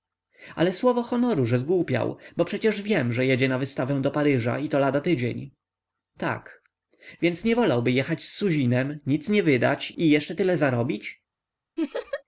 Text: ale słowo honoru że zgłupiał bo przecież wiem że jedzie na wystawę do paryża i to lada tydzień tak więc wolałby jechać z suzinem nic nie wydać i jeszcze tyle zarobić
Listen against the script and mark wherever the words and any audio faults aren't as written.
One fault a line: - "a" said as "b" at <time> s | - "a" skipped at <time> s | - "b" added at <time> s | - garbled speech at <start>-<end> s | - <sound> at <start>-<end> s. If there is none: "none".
- "nie" added at 7.4 s
- laugh at 11.8-12.2 s